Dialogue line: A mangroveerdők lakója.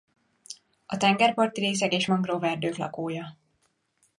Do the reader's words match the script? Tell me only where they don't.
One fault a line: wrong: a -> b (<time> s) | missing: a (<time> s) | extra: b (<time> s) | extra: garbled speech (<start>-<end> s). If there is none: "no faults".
extra: tengerparti részek és (1.0 s)